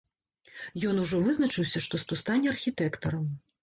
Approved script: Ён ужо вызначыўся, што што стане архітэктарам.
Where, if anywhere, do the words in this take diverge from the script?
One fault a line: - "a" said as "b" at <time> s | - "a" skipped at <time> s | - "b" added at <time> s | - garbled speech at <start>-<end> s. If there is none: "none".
none